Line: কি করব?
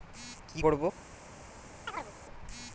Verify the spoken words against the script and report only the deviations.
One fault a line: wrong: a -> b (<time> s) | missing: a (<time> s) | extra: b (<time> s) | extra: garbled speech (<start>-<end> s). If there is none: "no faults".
no faults